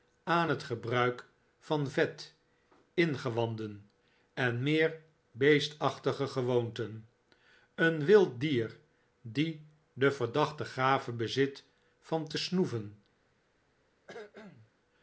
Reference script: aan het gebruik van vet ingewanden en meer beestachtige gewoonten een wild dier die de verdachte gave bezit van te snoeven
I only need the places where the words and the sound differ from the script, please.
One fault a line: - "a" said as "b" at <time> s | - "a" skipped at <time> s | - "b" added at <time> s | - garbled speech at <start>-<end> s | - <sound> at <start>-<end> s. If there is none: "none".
- cough at 14.1-14.7 s